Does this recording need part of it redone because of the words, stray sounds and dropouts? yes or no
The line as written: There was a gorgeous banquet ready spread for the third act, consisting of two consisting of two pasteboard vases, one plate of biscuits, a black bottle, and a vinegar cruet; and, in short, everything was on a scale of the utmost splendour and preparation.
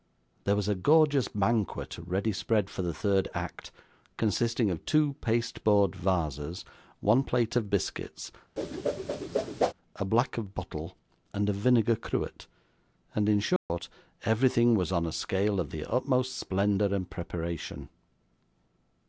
yes